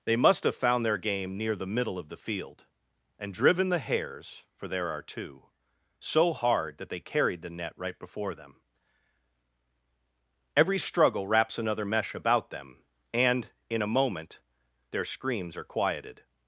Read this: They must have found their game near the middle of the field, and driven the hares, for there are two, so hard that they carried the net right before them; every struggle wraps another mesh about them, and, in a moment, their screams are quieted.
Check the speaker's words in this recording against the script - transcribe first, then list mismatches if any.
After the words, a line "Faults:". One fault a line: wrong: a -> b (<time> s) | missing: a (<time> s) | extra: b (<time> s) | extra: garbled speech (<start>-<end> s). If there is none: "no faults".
They must have found their game near the middle of the field, and driven the hares, for there are two, so hard that they carried the net right before them; every struggle wraps another mesh about them, and, in a moment, their screams are quieted.
Faults:
no faults